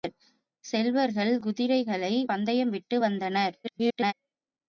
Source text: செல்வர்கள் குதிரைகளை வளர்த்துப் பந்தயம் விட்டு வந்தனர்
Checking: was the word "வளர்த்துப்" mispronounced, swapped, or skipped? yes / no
yes